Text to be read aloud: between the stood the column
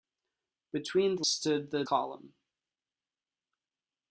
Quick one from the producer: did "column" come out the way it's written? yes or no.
yes